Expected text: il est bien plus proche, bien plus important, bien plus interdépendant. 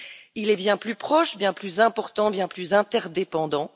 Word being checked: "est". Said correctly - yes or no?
yes